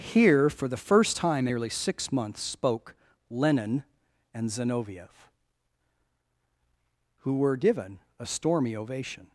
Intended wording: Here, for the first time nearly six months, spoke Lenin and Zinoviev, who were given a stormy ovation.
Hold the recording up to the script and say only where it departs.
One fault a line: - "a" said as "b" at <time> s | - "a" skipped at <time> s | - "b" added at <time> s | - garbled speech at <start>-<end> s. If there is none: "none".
none